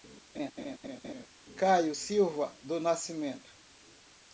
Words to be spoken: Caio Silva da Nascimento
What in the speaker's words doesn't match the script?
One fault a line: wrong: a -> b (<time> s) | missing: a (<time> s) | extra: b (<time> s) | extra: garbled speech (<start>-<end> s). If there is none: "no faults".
wrong: da -> do (2.6 s)